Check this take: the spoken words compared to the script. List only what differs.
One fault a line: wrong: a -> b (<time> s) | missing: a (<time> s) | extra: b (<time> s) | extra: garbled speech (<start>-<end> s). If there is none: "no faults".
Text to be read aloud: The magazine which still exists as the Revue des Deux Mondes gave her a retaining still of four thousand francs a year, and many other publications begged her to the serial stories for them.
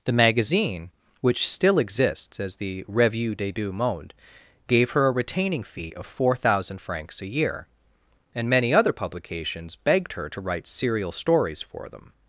wrong: still -> fee (5.6 s)
wrong: the -> write (10.4 s)